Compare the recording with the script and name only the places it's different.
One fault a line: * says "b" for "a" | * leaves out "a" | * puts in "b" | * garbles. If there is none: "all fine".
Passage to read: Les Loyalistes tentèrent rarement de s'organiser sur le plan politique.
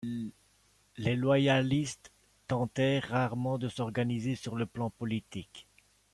all fine